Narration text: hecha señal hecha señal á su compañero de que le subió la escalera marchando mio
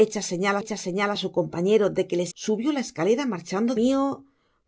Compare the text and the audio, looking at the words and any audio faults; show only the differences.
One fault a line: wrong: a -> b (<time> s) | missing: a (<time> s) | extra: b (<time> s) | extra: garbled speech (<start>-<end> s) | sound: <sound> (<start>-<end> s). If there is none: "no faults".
no faults